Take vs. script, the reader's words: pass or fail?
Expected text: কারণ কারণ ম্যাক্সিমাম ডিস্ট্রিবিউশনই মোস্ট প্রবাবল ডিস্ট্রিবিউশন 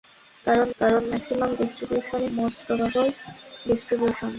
pass